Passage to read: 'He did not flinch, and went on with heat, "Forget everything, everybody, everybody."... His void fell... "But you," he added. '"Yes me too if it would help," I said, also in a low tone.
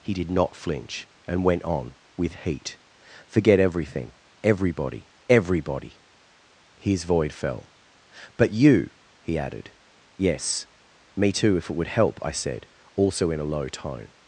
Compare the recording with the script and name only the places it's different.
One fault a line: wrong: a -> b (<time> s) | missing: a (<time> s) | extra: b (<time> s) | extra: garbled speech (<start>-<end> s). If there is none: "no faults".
no faults